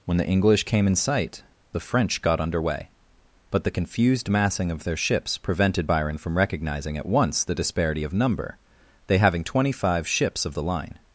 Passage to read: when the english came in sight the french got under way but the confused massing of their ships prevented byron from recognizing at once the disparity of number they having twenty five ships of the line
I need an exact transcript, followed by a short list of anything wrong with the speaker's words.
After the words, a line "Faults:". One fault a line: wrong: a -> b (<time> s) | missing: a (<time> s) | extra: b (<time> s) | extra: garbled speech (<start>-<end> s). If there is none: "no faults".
when the english came in sight the french got under way but the confused massing of their ships prevented byron from recognizing at once the disparity of number they having twenty five ships of the line
Faults:
no faults